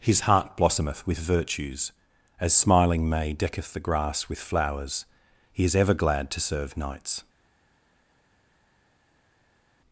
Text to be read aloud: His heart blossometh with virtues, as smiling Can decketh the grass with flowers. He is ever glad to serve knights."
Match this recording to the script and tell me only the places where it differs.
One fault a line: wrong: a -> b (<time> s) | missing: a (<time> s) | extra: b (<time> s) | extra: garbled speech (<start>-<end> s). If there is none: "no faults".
wrong: Can -> May (3.1 s)